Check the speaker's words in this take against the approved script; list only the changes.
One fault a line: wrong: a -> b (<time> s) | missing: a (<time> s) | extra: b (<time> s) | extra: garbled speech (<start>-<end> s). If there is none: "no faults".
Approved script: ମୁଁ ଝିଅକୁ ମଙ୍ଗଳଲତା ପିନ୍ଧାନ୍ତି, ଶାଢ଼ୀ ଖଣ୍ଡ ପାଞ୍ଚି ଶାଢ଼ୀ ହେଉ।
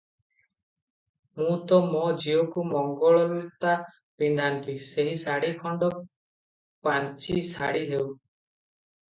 extra: ତ ମୋ (1.6 s)
extra: ସେହି (4.9 s)